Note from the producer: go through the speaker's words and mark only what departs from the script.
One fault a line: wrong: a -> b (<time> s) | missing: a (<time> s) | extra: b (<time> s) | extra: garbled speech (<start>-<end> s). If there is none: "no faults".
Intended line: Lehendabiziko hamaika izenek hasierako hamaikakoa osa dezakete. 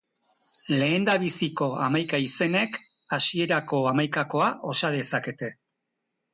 no faults